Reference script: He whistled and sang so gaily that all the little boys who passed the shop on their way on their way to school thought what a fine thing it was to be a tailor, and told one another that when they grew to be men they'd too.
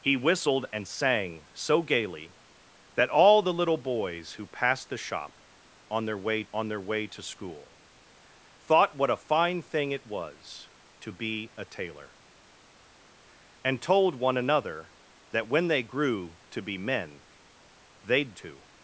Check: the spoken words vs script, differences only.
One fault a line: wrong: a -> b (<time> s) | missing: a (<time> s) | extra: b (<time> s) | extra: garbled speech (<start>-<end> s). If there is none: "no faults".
no faults